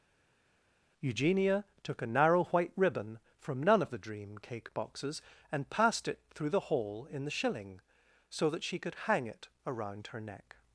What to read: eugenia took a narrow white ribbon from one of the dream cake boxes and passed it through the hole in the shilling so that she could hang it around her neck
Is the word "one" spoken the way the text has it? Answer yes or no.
no